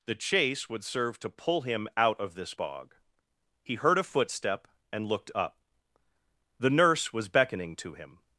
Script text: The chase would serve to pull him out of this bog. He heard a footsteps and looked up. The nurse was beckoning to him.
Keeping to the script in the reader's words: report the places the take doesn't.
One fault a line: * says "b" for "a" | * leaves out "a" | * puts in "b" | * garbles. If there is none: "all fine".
* says "footstep" for "footsteps"